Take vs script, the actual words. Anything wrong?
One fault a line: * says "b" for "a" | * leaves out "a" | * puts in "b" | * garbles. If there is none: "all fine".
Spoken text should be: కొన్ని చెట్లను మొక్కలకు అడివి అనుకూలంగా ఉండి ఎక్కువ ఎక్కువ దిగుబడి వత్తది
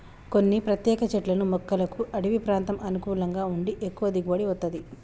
* puts in "ప్రత్యేక"
* puts in "ప్రాంతం"
* leaves out "ఎక్కువ"